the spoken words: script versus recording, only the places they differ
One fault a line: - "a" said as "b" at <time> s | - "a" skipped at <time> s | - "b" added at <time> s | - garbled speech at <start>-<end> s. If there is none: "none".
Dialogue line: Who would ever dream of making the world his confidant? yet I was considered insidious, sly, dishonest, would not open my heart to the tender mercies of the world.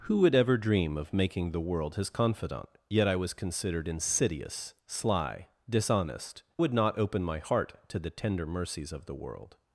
none